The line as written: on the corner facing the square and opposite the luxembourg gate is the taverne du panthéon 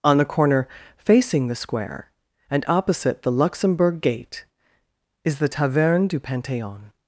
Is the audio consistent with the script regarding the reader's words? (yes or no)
yes